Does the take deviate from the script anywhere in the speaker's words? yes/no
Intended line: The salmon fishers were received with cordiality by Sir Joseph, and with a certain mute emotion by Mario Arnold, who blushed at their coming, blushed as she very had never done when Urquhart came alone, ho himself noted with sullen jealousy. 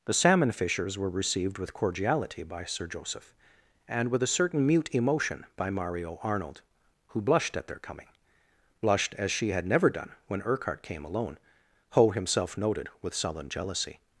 yes